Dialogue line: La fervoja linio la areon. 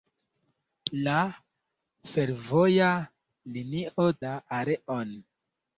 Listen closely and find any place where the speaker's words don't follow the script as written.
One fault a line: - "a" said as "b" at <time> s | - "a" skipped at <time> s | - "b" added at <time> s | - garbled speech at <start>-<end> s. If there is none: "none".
none